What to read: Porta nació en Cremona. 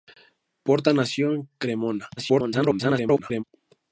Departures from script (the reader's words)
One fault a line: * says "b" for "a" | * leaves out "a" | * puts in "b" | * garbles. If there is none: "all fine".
* garbles